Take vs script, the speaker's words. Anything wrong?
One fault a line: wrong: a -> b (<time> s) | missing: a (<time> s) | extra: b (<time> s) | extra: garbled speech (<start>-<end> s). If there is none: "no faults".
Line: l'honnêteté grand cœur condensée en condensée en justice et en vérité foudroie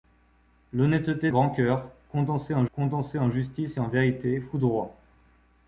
no faults